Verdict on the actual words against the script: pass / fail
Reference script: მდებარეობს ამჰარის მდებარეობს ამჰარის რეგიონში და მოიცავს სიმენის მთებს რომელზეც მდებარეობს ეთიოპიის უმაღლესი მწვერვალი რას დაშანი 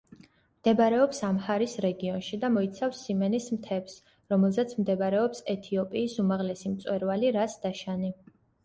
fail